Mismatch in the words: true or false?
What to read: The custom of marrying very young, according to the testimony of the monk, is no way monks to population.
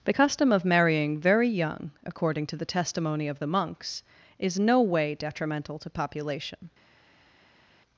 true